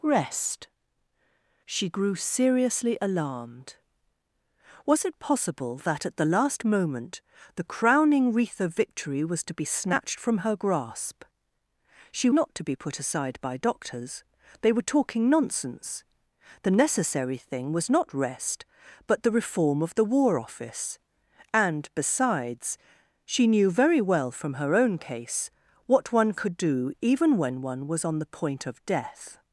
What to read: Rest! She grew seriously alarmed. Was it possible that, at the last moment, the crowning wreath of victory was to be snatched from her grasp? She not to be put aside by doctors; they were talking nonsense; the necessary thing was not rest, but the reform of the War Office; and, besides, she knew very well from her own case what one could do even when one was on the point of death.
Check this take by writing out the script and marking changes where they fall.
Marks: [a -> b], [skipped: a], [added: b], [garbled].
Rest! She grew seriously alarmed. Was it possible that, at the last moment, the crowning wreath of victory was to be snatched from her grasp? She not to be put aside by doctors; they were talking nonsense; the necessary thing was not rest, but the reform of the War Office; and, besides, she knew very well from her own case what one could do even when one was on the point of death.